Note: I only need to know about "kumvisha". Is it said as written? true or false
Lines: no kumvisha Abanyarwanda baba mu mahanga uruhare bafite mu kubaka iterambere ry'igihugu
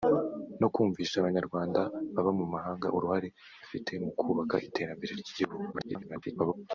true